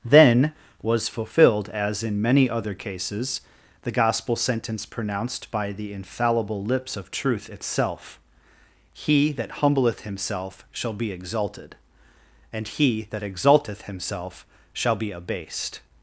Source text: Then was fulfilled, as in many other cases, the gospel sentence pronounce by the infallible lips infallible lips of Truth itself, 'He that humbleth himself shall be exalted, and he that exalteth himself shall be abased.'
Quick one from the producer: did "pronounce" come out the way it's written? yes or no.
no